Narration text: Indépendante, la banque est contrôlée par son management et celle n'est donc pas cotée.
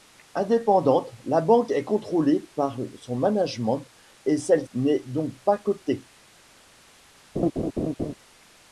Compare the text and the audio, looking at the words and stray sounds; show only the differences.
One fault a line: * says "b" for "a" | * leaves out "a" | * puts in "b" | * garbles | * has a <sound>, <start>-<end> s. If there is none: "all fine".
* has a laugh, 7.3-8.1 s